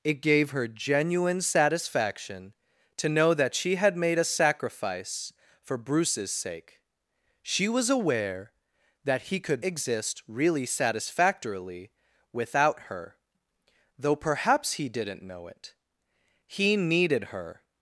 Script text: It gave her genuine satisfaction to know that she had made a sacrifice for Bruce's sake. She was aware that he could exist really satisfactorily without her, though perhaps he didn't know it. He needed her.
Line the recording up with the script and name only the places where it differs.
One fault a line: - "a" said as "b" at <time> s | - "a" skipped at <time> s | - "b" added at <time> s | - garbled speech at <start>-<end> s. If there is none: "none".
none